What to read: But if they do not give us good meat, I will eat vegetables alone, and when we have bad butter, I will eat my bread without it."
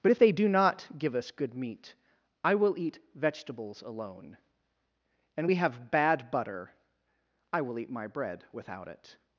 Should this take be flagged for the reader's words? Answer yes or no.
yes